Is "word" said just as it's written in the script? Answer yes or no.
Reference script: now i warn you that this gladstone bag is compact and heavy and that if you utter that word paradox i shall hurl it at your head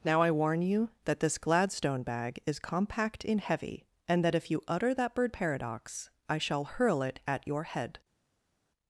no